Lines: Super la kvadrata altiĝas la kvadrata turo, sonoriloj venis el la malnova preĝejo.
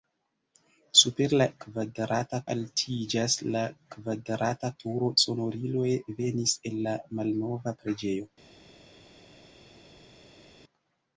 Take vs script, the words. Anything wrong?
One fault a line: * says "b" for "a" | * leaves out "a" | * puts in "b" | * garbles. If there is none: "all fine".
all fine